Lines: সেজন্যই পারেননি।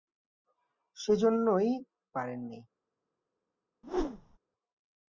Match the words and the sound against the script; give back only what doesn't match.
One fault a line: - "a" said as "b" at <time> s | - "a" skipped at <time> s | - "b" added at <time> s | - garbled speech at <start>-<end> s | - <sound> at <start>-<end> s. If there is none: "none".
- whoosh at 3.8-4.4 s